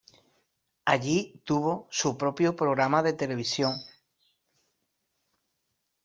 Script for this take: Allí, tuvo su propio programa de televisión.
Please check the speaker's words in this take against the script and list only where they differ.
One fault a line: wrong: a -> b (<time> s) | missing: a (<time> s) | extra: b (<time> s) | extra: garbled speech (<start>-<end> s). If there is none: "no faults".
no faults